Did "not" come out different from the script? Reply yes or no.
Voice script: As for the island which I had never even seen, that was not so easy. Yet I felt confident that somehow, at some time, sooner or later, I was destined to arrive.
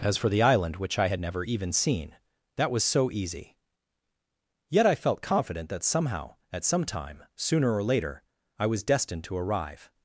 yes